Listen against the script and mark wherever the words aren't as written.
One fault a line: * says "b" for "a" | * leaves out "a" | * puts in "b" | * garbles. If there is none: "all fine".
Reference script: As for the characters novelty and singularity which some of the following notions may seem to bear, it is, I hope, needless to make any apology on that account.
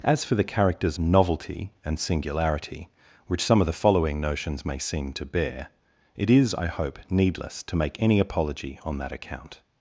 all fine